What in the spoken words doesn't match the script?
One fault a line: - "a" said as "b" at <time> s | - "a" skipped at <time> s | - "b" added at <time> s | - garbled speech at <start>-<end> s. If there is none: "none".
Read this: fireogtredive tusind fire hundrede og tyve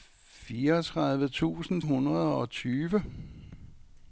- "fire" skipped at 1.8 s